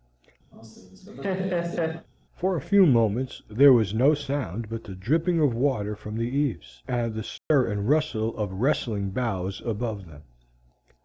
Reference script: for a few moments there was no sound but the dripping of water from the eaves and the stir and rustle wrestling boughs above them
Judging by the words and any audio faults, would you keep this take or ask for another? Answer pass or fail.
fail